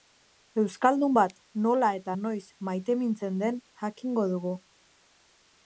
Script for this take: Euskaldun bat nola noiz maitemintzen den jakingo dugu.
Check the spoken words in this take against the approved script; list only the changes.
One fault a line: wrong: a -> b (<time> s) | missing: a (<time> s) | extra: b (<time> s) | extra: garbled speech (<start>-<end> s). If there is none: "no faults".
extra: eta (2.0 s)